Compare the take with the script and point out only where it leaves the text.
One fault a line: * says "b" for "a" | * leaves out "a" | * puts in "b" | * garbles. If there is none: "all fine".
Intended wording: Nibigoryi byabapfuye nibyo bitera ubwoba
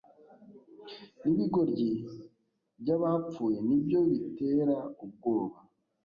all fine